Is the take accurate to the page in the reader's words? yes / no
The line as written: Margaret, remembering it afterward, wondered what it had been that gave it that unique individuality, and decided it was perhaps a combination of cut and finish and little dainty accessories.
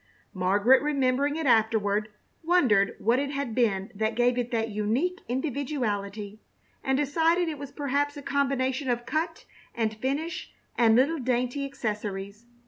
yes